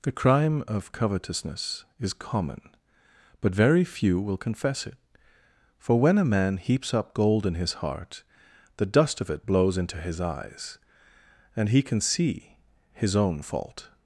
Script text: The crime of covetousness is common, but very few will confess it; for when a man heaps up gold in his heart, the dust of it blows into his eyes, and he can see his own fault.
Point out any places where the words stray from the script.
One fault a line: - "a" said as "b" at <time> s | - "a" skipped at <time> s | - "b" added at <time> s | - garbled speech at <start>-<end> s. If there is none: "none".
none